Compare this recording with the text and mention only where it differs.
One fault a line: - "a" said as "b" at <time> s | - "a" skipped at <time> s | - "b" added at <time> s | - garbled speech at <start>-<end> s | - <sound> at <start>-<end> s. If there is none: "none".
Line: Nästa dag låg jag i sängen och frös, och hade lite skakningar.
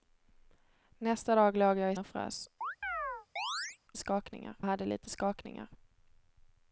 - "sängen" skipped at 1.9 s
- chirp at 2.6-3.8 s
- "och" said as "skakningar" at 4.0 s